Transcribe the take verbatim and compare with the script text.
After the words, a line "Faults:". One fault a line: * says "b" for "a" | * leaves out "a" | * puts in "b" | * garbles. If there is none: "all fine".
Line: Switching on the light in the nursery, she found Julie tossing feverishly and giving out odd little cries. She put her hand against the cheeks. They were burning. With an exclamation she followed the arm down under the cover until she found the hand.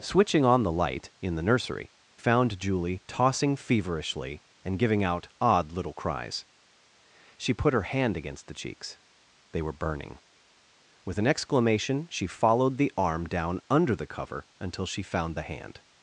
Switching on the light in the nursery, found Julie tossing feverishly and giving out odd little cries. She put her hand against the cheeks. They were burning. With an exclamation she followed the arm down under the cover until she found the hand.
Faults:
* leaves out "she"